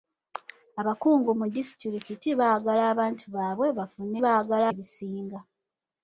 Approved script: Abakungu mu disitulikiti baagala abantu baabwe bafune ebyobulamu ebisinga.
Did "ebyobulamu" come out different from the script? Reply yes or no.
yes